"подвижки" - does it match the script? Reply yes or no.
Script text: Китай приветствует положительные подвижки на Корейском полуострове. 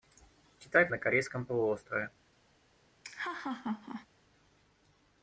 no